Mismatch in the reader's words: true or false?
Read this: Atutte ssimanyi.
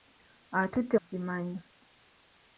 false